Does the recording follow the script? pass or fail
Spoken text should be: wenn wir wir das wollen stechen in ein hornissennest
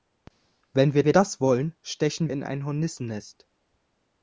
pass